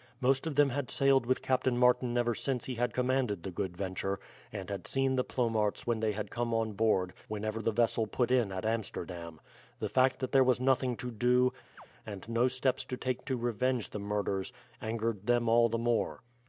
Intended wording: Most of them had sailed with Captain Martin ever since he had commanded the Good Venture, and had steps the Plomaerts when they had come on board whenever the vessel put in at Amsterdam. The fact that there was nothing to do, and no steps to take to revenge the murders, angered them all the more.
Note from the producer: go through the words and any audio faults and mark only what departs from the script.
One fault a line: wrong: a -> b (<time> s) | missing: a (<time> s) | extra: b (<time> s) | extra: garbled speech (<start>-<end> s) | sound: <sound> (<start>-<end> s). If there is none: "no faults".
wrong: steps -> seen (4.9 s)
sound: chirp (11.8-11.9 s)